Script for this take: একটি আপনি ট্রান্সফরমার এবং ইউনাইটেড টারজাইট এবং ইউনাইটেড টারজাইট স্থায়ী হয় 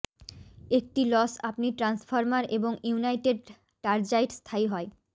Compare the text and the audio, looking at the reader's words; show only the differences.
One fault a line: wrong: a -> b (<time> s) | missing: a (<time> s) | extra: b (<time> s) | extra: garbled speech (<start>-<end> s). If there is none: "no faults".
extra: লস (1.1 s)
missing: এবং ইউনাইটেড টারজাইট (4.3 s)